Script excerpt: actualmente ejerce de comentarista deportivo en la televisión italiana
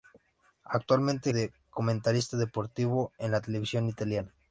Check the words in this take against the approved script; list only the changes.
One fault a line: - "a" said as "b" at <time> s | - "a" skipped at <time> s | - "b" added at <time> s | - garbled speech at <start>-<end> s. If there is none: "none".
- "ejerce" skipped at 1.3 s